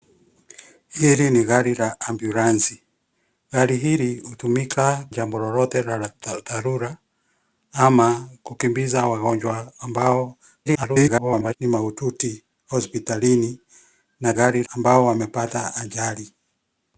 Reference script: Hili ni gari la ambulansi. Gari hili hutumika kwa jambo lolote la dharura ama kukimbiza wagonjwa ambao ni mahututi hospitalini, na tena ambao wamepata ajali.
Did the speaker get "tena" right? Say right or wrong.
wrong